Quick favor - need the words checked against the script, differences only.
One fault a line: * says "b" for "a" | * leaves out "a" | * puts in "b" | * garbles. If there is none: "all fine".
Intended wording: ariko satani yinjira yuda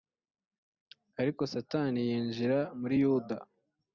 * puts in "muri"